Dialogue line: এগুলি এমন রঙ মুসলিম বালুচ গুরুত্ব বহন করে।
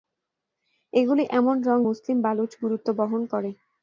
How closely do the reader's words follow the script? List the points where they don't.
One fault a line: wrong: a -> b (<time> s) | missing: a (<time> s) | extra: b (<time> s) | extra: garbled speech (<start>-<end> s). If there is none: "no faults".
no faults